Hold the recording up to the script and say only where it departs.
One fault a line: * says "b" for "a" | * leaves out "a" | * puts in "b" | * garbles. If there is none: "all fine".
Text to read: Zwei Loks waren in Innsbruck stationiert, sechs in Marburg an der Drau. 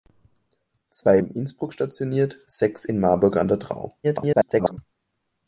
* leaves out "Loks waren"
* garbles